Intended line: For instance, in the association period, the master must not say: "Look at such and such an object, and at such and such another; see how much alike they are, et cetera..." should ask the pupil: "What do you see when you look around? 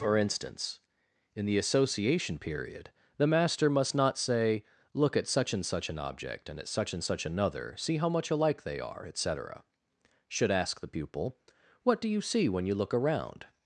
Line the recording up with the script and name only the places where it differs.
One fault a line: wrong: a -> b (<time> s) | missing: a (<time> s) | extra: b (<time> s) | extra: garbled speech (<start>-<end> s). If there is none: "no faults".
no faults